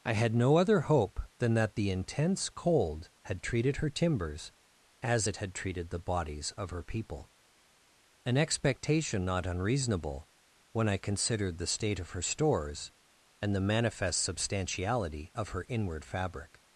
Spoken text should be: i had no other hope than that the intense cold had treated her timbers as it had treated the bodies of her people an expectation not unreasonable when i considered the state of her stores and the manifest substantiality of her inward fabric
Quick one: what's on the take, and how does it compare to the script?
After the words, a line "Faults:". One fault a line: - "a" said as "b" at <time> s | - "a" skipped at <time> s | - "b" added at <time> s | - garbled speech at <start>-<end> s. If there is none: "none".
i had no other hope than that the intense cold had treated her timbers as it had treated the bodies of her people an expectation not unreasonable when i considered the state of her stores and the manifest substantiality of her inward fabric
Faults:
none